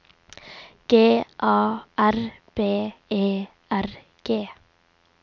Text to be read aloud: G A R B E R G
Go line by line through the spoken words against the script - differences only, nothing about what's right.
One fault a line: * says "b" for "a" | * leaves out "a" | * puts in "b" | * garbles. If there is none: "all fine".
all fine